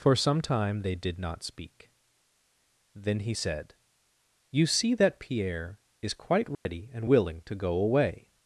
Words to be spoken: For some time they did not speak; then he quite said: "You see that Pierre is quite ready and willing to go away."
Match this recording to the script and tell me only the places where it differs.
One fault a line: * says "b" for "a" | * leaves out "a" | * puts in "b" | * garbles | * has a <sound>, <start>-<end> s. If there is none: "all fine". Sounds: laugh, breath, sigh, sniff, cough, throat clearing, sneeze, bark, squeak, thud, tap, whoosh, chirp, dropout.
* leaves out "quite"
* has a dropout, 6.5-6.7 s